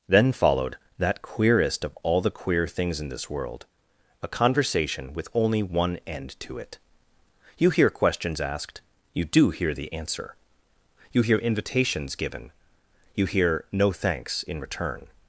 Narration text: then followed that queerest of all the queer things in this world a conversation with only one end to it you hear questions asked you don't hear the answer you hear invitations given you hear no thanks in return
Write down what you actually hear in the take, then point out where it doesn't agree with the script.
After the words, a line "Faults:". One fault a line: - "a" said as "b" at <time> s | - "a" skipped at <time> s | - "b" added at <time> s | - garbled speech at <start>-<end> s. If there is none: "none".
then followed that queerest of all the queer things in this world a conversation with only one end to it you hear questions asked you do hear the answer you hear invitations given you hear no thanks in return
Faults:
- "don't" said as "do" at 9.2 s